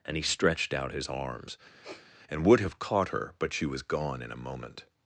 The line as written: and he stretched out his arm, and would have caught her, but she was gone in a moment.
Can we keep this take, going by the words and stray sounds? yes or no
no